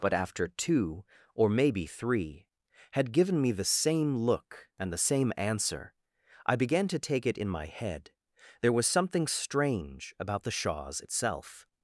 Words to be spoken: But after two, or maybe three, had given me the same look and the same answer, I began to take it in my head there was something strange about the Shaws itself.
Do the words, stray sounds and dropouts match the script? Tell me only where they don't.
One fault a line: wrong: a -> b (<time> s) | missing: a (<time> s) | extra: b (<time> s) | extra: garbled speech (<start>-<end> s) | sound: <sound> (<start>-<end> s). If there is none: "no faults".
no faults